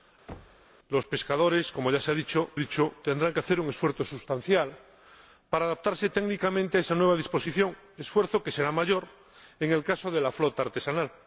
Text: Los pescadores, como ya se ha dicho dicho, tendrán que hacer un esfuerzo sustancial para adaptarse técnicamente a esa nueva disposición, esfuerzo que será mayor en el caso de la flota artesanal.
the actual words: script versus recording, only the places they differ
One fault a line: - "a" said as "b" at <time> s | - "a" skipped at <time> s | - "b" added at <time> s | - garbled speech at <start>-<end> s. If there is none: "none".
none